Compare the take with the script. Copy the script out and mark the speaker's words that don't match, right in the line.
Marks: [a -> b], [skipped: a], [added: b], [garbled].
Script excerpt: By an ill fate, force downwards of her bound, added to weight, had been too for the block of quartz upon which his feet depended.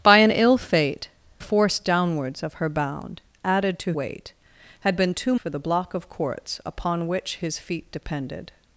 By an ill fate, force downwards of her bound, added to weight, had been too for the block of quartz upon which his feet depended.